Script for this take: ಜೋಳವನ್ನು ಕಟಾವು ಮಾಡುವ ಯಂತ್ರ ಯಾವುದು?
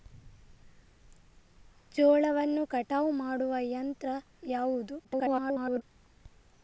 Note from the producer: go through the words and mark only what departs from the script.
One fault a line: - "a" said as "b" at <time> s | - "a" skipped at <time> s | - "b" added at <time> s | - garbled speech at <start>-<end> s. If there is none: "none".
- garbled speech at 5.0-5.8 s